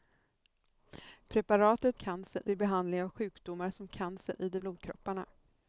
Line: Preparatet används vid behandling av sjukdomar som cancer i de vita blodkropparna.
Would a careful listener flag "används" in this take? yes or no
yes